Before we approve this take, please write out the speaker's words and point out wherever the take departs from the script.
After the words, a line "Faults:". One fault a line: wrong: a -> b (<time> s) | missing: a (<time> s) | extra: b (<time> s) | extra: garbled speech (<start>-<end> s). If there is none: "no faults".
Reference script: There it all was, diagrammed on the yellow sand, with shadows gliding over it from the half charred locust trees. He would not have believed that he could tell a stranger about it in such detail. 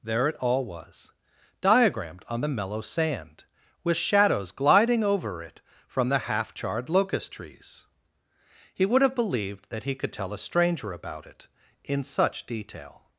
There it all was, diagrammed on the mellow sand, with shadows gliding over it from the half charred locust trees. He would have believed that he could tell a stranger about it in such detail.
Faults:
wrong: yellow -> mellow (2.5 s)
missing: not (9.0 s)